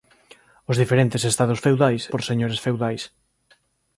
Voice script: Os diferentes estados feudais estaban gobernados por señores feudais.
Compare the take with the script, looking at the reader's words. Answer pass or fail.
fail